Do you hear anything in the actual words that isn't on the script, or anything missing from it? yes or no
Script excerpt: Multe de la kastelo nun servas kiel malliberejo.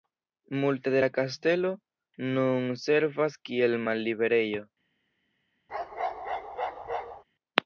no